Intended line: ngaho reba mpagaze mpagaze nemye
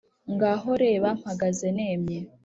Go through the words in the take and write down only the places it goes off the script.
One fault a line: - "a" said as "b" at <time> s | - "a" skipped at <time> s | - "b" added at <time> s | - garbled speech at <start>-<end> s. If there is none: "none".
- "mpagaze" skipped at 1.7 s